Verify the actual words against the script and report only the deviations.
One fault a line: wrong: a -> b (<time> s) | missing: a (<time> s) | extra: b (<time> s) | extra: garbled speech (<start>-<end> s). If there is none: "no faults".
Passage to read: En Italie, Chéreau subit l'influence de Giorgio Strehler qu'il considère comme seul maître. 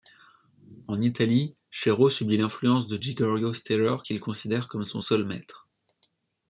extra: son (4.8 s)